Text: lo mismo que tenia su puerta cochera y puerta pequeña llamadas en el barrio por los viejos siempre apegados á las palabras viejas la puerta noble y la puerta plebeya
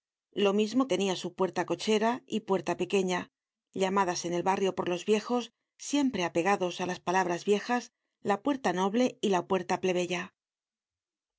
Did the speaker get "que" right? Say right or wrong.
wrong